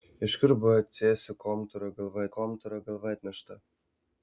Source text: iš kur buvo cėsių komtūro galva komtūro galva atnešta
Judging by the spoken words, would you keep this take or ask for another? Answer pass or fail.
pass